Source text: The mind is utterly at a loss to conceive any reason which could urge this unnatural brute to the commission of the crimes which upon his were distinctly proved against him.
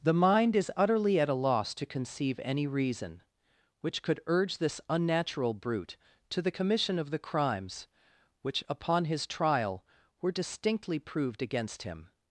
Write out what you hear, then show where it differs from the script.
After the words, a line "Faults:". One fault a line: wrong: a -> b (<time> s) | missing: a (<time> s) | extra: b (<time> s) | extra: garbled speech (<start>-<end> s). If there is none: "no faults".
The mind is utterly at a loss to conceive any reason which could urge this unnatural brute to the commission of the crimes which upon his trial were distinctly proved against him.
Faults:
extra: trial (9.3 s)